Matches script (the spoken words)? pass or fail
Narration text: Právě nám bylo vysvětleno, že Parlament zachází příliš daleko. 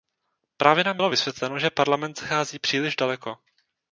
pass